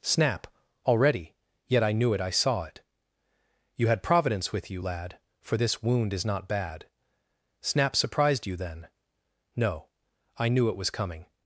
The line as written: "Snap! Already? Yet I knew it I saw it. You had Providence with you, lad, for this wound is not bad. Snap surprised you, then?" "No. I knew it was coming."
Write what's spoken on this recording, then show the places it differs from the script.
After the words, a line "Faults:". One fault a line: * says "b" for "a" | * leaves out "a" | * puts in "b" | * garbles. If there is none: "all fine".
"Snap! Already? Yet I knew it I saw it. You had Providence with you, lad, for this wound is not bad. Snap surprised you, then?" "No. I knew it was coming."
Faults:
all fine